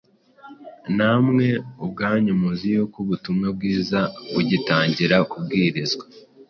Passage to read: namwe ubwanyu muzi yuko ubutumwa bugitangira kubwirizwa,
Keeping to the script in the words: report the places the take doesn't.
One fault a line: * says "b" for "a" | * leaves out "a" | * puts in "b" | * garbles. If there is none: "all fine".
* puts in "bwiza"